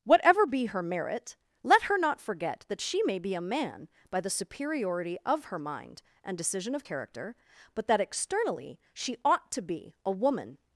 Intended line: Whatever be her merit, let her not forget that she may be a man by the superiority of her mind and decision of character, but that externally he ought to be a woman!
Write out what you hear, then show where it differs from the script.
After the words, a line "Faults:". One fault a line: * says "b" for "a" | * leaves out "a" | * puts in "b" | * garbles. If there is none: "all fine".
Whatever be her merit, let her not forget that she may be a man by the superiority of her mind and decision of character, but that externally she ought to be a woman!
Faults:
* says "she" for "he"